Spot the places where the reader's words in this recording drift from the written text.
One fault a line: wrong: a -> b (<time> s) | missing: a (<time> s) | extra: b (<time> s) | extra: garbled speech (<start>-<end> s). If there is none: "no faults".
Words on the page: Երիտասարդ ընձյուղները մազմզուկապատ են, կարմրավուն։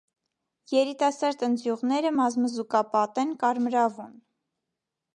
no faults